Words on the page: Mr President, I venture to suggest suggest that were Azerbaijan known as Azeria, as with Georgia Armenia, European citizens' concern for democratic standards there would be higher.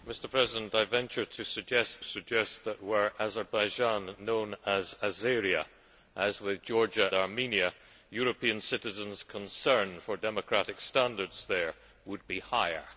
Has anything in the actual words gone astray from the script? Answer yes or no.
no